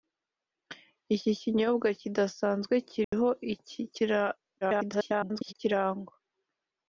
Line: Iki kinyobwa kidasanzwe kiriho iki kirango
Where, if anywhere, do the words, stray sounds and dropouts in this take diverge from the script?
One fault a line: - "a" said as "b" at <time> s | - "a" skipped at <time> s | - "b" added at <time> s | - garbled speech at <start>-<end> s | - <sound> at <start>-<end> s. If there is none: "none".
- dropout at 3.0-3.1 s
- garbled speech at 4.6-5.5 s